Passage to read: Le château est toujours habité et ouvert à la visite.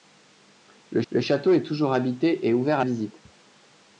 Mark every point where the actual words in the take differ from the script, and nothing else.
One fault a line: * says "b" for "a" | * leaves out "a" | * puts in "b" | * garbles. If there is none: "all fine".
* puts in "le"
* leaves out "la"